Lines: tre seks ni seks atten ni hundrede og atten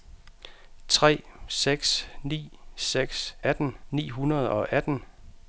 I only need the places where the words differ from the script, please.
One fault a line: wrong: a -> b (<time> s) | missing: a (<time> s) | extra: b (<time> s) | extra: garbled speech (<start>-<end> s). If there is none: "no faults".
no faults